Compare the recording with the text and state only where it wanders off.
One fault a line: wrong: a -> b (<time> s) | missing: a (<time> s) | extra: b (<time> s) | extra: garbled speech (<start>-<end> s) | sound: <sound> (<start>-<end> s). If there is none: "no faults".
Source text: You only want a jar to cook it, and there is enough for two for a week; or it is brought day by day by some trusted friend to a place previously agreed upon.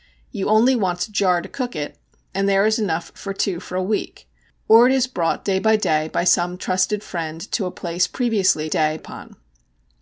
wrong: agreed -> day (8.6 s)